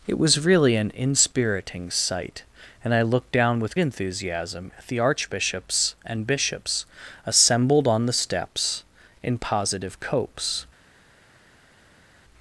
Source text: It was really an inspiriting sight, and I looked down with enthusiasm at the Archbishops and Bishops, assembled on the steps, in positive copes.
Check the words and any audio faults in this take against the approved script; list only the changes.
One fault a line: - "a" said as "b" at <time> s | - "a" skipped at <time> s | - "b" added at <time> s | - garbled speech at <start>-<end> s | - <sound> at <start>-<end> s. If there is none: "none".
none